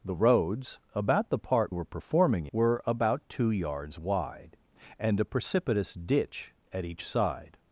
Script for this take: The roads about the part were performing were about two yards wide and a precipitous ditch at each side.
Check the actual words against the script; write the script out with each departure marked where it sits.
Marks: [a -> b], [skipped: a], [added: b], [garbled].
The roads about the part were performing were about two yards wide and a precipitous ditch at each side.